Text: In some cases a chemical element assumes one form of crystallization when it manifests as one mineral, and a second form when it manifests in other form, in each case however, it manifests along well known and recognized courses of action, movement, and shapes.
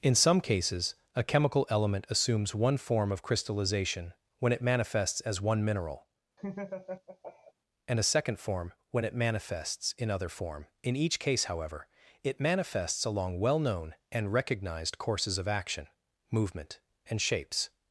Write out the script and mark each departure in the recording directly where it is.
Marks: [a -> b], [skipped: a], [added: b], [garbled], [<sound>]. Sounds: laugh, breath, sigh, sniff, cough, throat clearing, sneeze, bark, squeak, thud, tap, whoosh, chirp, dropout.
In some cases a chemical element assumes one form of crystallization when it manifests as one mineral, [laugh] and a second form when it manifests in other form, in each case however, it manifests along well known and recognized courses of action, movement, and shapes.